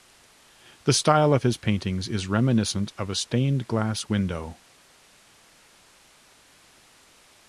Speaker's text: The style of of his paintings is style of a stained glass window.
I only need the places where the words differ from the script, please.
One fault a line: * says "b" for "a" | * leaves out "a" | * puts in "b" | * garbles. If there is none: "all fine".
* leaves out "of"
* says "reminiscent" for "style"